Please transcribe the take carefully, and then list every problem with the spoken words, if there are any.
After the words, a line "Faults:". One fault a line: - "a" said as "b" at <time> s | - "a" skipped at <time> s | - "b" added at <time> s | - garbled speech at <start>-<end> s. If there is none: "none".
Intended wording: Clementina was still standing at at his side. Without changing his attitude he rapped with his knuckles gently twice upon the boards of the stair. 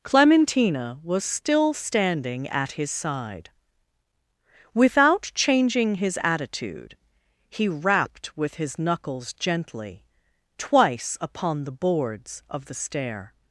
Clementina was still standing at his side. Without changing his attitude he rapped with his knuckles gently twice upon the boards of the stair.
Faults:
- "at" skipped at 2.7 s